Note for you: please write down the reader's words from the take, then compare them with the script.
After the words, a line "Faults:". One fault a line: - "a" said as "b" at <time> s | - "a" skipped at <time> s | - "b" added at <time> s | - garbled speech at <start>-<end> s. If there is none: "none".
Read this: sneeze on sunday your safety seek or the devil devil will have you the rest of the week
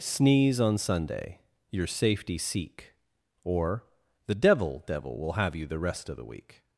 sneeze on sunday your safety seek or the devil devil will have you the rest of the week
Faults:
none